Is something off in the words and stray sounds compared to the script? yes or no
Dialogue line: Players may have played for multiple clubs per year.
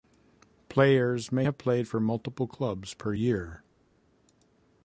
no